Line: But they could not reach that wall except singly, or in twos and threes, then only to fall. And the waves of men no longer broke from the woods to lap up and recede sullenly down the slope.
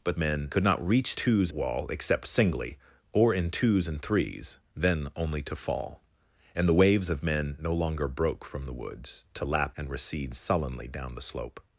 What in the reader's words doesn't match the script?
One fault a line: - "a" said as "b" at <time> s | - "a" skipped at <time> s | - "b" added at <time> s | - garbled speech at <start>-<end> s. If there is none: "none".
- "they" said as "men" at 0.2 s
- "that" said as "twos" at 1.1 s
- "up" skipped at 9.8 s